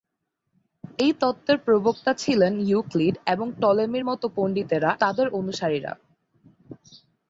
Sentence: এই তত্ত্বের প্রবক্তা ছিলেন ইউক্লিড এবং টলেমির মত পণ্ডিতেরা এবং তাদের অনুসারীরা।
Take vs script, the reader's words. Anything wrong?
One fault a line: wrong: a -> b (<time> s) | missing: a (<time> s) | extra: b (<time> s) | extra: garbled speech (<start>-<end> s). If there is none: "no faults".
missing: এবং (4.9 s)